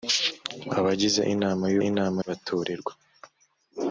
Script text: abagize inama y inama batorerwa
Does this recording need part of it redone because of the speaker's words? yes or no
no